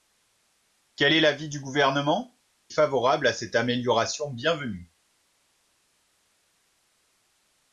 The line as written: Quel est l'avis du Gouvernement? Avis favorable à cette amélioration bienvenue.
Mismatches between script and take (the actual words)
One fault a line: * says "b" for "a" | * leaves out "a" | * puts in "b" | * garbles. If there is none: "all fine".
* leaves out "Avis"